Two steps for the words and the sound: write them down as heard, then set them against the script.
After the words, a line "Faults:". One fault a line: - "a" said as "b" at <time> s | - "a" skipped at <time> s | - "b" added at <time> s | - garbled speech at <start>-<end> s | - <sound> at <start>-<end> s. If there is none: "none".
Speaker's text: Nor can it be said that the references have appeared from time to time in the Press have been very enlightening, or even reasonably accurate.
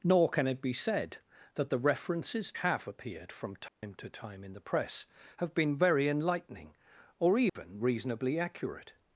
Nor can it be said that the references have appeared from time to time in the Press have been very enlightening, or even reasonably accurate.
Faults:
- dropout at 3.7-3.8 s
- dropout at 7.5-7.6 s